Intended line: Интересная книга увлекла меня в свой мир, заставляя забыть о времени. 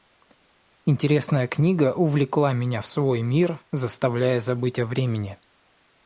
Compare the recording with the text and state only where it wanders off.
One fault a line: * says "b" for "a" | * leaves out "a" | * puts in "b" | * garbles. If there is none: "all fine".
all fine